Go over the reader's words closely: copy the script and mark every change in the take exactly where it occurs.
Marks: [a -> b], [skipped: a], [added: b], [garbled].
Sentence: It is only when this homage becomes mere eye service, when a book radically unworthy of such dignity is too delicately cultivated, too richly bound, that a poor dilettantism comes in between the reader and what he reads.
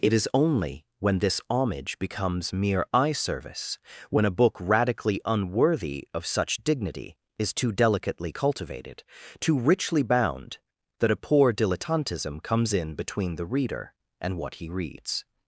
It is only when this homage becomes mere eye service, when a book radically unworthy of such dignity is too delicately cultivated, too richly bound, that a poor dilettantism comes in between the reader and what he reads.